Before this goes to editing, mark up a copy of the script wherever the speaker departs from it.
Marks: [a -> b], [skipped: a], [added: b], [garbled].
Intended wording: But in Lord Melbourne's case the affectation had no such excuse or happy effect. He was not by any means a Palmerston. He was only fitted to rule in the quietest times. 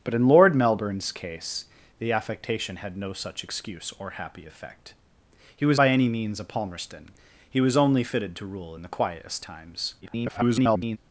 But in Lord Melbourne's case the affectation had no such excuse or happy effect. He was [skipped: not] by any means a Palmerston. He was only fitted to rule in the quietest times. [garbled]